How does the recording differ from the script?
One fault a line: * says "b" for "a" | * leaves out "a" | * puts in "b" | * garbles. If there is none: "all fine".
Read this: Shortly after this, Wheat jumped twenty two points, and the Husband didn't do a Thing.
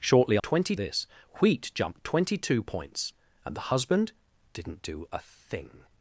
* says "twenty" for "after"